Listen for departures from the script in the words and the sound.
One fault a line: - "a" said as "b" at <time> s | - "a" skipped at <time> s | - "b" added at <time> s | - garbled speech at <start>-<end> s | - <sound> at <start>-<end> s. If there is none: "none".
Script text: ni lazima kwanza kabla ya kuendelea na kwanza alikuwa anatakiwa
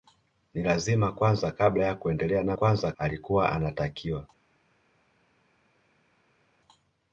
none